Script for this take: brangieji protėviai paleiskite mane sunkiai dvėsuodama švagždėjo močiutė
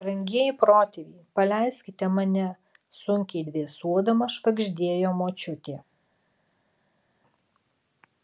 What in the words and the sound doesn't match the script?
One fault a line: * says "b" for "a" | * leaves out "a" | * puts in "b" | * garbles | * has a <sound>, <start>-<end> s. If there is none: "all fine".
all fine